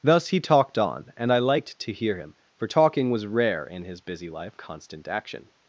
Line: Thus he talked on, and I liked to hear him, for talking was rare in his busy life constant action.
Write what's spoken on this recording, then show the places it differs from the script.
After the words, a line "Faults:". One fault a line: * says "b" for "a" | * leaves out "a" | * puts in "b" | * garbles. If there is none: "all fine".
Thus he talked on, and I liked to hear him, for talking was rare in his busy life constant action.
Faults:
all fine